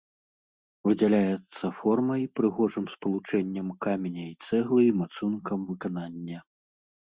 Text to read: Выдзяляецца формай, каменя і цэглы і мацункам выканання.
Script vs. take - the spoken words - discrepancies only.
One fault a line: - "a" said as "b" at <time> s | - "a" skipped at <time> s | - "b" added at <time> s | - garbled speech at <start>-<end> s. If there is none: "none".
- "прыгожым спалучэннем" added at 2.4 s